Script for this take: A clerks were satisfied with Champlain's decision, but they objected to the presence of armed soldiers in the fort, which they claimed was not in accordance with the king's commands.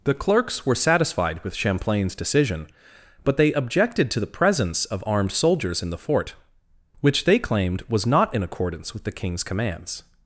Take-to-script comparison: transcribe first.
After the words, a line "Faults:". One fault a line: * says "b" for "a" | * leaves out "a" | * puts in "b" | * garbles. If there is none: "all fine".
The clerks were satisfied with Champlain's decision, but they objected to the presence of armed soldiers in the fort, which they claimed was not in accordance with the king's commands.
Faults:
* says "The" for "A"